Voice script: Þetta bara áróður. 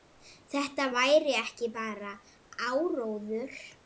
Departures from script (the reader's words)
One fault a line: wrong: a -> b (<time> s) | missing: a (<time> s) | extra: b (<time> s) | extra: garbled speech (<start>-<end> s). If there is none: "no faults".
extra: væri ekki (0.9 s)